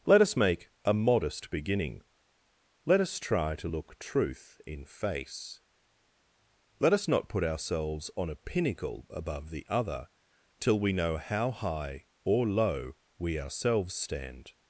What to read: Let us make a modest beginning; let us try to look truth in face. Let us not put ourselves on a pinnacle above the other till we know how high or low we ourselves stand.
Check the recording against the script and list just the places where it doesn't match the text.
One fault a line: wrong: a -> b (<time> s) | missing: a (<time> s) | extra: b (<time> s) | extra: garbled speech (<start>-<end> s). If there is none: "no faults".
no faults